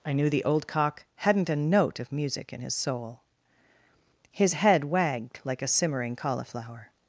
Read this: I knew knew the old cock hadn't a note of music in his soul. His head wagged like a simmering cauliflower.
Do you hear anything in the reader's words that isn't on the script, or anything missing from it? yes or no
yes